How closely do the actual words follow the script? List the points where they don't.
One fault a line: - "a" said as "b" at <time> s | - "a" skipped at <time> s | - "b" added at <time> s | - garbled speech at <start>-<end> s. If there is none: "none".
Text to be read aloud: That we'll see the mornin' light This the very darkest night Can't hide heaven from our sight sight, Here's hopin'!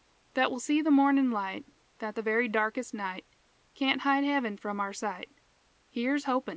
- "This" said as "That" at 2.0 s
- "sight" skipped at 5.3 s